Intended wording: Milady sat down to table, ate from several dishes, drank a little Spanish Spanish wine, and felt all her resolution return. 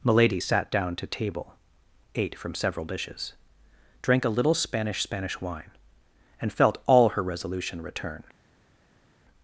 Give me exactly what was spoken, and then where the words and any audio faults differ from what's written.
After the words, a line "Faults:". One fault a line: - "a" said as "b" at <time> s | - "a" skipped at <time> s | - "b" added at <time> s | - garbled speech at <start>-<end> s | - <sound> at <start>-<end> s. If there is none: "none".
Milady sat down to table, ate from several dishes, drank a little Spanish Spanish wine, and felt all her resolution return.
Faults:
none